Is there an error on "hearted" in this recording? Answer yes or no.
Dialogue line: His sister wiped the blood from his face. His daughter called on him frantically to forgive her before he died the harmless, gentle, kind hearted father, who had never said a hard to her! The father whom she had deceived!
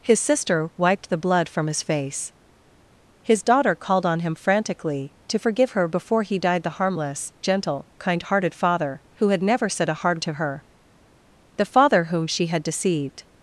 no